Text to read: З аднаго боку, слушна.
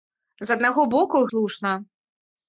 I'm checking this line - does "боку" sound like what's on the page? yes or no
yes